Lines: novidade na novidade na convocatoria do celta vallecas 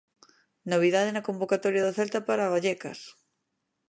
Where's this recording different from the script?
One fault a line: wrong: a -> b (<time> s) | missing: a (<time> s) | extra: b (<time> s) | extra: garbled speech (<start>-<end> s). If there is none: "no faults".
missing: novidade na (1.2 s)
extra: para (2.3 s)